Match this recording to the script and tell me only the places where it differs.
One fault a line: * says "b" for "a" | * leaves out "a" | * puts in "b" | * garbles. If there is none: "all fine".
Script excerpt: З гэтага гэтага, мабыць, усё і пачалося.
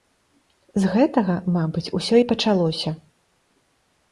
* leaves out "гэтага"